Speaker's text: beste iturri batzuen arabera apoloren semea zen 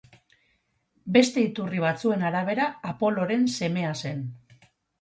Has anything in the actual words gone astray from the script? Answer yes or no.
no